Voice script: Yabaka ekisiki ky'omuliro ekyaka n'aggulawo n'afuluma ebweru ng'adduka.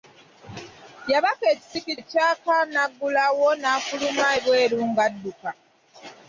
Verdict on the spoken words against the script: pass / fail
fail